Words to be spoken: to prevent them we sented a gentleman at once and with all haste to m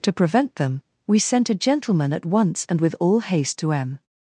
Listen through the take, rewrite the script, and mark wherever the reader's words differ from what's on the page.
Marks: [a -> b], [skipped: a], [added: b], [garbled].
to prevent them we [sented -> sent] a gentleman at once and with all haste to m